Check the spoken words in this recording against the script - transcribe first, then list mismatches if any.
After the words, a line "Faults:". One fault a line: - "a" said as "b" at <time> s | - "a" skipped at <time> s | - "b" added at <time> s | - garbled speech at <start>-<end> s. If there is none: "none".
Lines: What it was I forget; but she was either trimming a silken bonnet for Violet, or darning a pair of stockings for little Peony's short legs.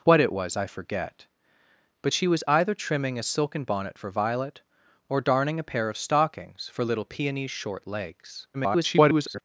What it was I forget; but she was either trimming a silken bonnet for Violet, or darning a pair of stockings for little Peony's short legs. [garbled]
Faults:
- garbled speech at 8.5-9.4 s